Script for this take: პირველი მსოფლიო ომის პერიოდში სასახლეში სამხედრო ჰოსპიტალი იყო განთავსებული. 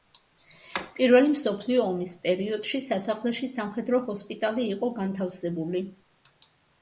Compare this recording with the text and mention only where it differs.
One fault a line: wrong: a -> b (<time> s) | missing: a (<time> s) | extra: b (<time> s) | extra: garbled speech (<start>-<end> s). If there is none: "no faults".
no faults